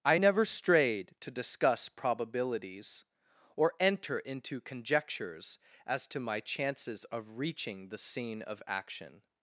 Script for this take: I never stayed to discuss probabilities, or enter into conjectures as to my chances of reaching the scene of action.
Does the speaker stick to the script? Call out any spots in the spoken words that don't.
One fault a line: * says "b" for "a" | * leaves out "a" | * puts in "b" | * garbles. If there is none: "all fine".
* says "strayed" for "stayed"